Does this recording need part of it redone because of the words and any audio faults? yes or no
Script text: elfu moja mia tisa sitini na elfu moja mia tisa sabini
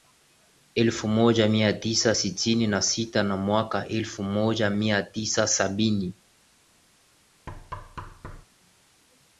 yes